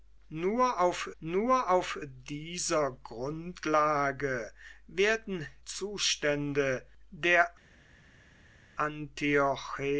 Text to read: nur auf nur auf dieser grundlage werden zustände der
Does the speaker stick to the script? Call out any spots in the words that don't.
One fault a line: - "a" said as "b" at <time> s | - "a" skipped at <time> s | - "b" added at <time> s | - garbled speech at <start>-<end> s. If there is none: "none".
none